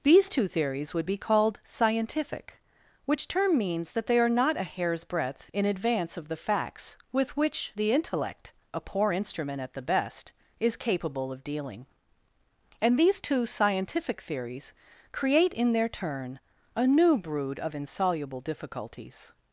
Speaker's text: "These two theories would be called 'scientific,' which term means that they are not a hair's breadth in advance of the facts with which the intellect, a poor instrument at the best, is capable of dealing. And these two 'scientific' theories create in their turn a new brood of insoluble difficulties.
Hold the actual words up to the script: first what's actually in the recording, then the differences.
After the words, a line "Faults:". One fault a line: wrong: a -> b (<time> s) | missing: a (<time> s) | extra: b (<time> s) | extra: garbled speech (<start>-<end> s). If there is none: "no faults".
"These two theories would be called 'scientific,' which term means that they are not a hair's breadth in advance of the facts with which the intellect, a poor instrument at the best, is capable of dealing. And these two 'scientific' theories create in their turn a new brood of insoluble difficulties.
Faults:
no faults